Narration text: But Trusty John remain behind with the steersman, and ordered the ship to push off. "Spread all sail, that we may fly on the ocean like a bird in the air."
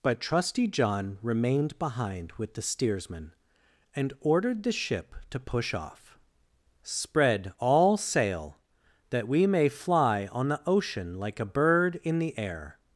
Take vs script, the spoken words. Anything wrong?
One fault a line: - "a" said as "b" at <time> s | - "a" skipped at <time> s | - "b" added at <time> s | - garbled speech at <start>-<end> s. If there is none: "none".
- "remain" said as "remained" at 1.2 s